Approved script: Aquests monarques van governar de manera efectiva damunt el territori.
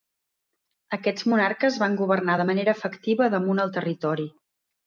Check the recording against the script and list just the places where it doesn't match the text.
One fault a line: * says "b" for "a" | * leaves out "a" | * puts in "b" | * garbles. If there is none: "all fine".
all fine